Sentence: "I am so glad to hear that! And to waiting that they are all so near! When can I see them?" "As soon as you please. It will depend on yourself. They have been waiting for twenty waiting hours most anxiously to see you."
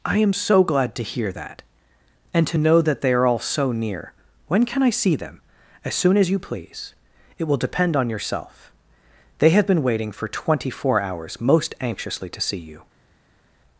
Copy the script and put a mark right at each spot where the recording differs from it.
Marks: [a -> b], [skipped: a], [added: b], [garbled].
"I am so glad to hear that! And to [waiting -> know] that they are all so near! When can I see them?" "As soon as you please. It will depend on yourself. They have been waiting for twenty [waiting -> four] hours most anxiously to see you."